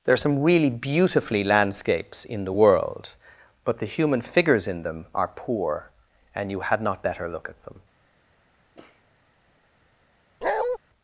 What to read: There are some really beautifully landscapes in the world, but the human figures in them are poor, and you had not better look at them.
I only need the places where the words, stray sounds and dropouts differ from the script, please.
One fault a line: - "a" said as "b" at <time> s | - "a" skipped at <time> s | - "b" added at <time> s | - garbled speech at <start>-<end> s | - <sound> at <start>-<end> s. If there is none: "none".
- sniff at 8.7-9.1 s
- bark at 10.4-10.8 s